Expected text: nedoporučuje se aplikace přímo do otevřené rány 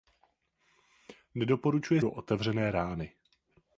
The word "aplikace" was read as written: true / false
false